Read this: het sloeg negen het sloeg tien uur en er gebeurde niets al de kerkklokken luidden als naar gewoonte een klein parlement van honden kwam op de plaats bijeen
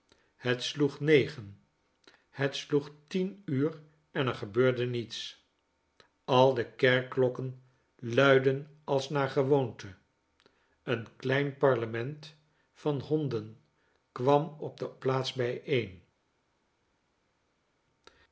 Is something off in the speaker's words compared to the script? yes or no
no